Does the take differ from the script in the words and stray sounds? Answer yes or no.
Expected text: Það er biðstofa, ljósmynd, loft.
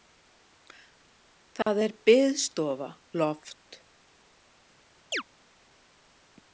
yes